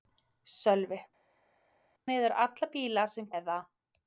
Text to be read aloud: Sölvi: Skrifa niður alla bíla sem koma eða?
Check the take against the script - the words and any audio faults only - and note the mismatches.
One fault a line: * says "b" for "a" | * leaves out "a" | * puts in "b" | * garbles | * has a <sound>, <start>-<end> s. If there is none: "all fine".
* leaves out "Skrifa"
* leaves out "koma"